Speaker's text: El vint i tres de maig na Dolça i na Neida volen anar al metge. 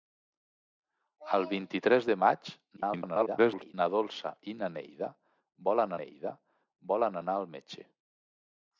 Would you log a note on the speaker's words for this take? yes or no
yes